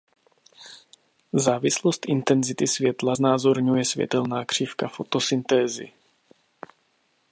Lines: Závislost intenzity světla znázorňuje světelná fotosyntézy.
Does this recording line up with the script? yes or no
no